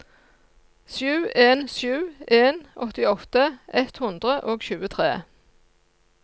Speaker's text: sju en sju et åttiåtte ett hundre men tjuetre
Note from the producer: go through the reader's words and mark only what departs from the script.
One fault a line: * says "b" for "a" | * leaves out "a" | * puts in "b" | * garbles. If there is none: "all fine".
* says "en" for "et"
* says "og" for "men"